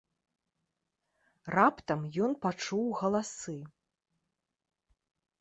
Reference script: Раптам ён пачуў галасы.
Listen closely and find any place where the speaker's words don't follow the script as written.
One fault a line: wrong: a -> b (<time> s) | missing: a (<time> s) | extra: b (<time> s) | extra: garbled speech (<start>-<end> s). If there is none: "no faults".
no faults